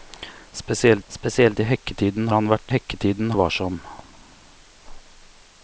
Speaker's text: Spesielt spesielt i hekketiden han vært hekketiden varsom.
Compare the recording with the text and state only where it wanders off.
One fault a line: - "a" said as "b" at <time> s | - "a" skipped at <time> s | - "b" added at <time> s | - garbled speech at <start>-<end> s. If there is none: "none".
none